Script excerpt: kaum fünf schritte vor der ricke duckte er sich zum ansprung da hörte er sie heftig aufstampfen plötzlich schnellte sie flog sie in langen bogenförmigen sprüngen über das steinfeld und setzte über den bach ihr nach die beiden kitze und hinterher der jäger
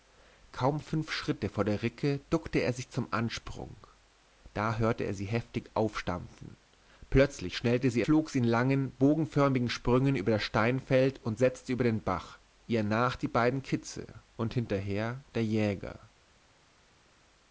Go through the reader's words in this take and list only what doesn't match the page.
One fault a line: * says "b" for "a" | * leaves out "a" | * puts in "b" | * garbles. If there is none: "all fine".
all fine